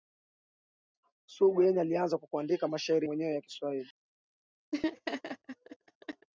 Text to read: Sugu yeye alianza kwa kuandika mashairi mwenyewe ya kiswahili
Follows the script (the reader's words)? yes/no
yes